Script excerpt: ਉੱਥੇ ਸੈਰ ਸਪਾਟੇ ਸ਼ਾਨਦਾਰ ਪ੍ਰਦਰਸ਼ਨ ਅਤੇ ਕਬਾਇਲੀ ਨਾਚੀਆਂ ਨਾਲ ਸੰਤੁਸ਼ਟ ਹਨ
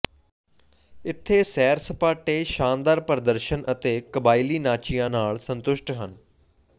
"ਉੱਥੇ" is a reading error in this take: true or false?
true